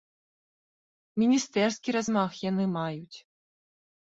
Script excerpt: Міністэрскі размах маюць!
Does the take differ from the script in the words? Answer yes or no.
yes